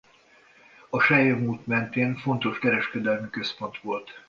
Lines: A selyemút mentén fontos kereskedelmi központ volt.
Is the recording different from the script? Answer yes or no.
no